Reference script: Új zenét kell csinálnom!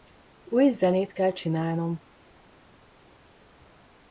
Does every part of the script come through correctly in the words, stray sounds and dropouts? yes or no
yes